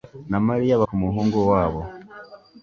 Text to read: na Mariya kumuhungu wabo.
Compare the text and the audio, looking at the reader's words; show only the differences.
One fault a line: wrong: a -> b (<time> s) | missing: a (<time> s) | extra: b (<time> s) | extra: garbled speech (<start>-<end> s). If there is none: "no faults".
no faults